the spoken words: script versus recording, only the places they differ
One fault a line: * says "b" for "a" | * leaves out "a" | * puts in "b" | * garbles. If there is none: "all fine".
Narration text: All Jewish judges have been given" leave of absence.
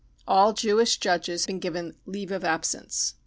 * leaves out "have"